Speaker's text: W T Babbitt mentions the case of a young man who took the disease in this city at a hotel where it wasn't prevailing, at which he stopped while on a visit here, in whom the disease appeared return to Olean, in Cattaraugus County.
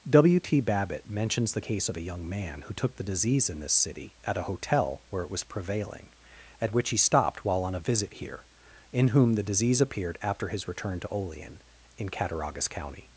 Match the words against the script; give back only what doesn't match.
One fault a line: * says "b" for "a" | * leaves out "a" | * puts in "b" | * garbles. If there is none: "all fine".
* says "was" for "wasn't"
* puts in "after his"